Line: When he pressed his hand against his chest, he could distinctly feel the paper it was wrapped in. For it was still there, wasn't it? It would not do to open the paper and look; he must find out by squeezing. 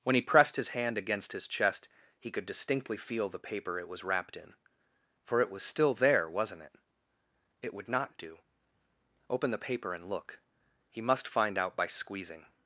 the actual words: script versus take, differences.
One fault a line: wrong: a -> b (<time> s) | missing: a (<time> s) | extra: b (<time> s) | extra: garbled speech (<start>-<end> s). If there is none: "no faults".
missing: to (8.4 s)